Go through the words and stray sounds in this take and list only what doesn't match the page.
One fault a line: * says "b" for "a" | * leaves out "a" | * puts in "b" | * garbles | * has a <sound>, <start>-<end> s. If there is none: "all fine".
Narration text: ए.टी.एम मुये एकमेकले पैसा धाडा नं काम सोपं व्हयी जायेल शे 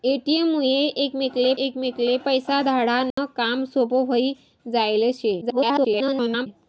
* puts in "एकमेकले"
* has a dropout, 3.1-3.2 s
* garbles